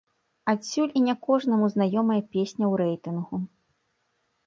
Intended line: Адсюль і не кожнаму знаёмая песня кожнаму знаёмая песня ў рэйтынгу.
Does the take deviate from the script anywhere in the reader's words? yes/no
yes